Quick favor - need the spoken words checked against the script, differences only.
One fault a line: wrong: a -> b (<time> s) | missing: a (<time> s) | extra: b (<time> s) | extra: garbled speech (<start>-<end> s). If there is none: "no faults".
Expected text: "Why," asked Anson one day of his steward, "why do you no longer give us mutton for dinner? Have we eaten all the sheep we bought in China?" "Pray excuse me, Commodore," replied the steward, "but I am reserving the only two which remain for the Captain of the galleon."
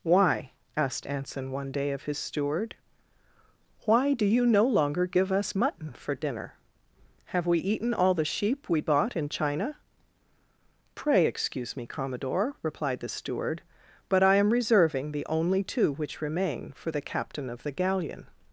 no faults